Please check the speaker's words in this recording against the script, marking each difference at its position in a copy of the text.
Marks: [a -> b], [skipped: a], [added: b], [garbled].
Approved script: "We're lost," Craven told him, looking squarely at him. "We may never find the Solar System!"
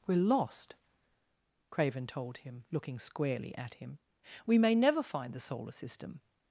"We're lost," Craven told him, looking squarely at him. "We may never find the Solar System!"